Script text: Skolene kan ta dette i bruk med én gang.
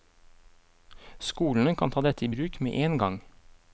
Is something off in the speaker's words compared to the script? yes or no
no